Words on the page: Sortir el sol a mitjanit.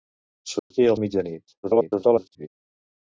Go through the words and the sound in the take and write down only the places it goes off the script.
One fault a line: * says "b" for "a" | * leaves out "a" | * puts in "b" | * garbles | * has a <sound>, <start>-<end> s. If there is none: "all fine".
* has a dropout, 0.6-0.7 s
* leaves out "sol"
* garbles